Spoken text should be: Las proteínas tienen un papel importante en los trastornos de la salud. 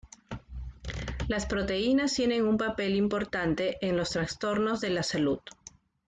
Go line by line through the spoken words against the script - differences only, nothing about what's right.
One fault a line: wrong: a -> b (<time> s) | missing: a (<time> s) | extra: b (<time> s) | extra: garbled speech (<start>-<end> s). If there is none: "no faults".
no faults